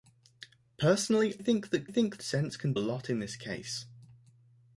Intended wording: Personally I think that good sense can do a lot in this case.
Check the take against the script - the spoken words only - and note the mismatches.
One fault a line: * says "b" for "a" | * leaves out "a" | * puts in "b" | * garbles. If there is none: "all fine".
* leaves out "I"
* says "think" for "good"
* leaves out "do"